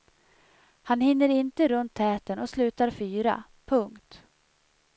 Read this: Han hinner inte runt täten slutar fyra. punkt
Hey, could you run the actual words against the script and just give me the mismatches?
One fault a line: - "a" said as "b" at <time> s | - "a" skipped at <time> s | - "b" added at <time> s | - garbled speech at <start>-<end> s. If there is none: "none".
- "och" added at 2.4 s